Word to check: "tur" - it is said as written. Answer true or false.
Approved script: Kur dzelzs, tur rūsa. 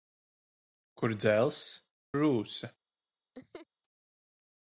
false